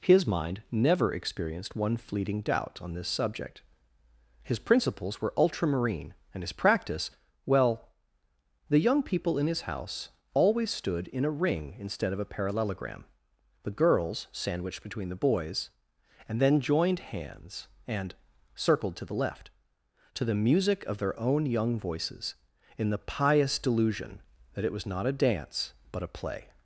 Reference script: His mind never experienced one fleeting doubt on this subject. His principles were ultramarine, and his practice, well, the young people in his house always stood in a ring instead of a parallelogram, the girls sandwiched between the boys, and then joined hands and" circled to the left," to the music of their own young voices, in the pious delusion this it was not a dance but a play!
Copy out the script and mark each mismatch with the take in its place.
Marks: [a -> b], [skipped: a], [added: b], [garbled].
His mind never experienced one fleeting doubt on this subject. His principles were ultramarine, and his practice, well, the young people in his house always stood in a ring instead of a parallelogram, the girls sandwiched between the boys, and then joined hands and" circled to the left," to the music of their own young voices, in the pious delusion [this -> that] it was not a dance but a play!